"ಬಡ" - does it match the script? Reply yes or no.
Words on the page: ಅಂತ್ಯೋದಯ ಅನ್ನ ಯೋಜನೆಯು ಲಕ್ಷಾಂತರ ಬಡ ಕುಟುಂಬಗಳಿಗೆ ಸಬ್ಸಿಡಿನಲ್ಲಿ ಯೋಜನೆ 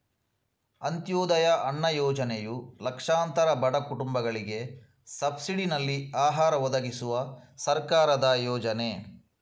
yes